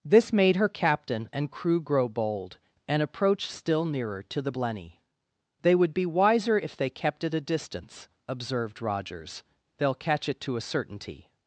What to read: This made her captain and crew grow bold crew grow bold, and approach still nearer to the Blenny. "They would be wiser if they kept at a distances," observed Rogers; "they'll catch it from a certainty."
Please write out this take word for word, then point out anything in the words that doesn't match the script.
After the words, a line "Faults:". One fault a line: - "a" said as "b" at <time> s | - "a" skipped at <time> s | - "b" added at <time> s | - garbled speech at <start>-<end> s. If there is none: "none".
This made her captain and crew grow bold, and approach still nearer to the Blenny. "They would be wiser if they kept at a distance," observed Rogers; "they'll catch it to a certainty."
Faults:
- "crew grow bold" skipped at 2.6 s
- "distances" said as "distance" at 7.4 s
- "from" said as "to" at 10.4 s